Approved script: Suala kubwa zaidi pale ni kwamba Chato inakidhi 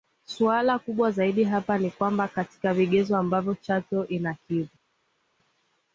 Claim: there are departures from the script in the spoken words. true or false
true